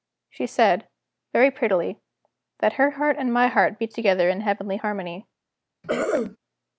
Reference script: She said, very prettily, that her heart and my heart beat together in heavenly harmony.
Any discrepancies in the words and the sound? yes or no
yes